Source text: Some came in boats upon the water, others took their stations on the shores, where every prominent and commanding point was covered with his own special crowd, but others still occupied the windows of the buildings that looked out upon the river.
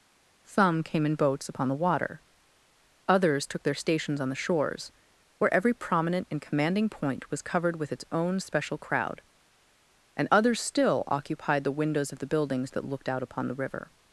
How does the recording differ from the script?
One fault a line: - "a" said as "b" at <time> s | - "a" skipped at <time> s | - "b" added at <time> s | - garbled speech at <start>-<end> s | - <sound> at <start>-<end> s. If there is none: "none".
- "his" said as "its" at 7.9 s
- "but" said as "and" at 10.2 s